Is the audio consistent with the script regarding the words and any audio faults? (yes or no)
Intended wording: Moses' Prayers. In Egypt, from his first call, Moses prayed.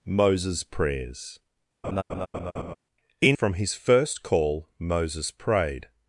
no